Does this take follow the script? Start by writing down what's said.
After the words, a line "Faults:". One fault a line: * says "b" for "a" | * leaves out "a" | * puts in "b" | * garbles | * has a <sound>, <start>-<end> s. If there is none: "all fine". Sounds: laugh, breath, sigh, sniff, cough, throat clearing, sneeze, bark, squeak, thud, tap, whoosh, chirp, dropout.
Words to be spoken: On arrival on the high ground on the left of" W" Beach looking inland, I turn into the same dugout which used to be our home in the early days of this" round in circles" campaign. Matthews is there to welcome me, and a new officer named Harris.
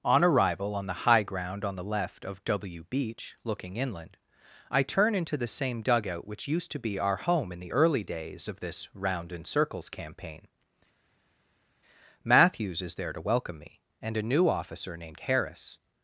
On arrival on the high ground on the left of" W" Beach looking inland, I turn into the same dugout which used to be our home in the early days of this" round in circles" campaign. Matthews is there to welcome me, and a new officer named Harris.
Faults:
all fine